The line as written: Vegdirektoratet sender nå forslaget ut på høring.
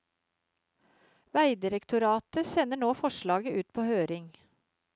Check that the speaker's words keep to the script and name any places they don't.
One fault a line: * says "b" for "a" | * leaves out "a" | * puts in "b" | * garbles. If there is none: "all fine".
all fine